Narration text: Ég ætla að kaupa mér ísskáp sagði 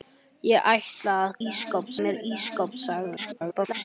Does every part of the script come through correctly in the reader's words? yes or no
no